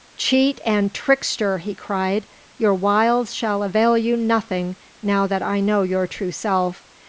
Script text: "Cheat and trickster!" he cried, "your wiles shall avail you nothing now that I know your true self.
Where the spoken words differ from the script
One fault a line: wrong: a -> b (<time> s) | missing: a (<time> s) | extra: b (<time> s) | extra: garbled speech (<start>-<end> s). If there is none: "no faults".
no faults